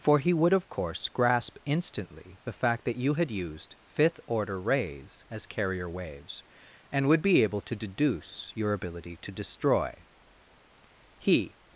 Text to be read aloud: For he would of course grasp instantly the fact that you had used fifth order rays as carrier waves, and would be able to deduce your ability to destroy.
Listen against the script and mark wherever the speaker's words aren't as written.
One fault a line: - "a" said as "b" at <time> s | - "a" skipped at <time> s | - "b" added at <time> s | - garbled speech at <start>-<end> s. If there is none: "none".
- "He" added at 11.2 s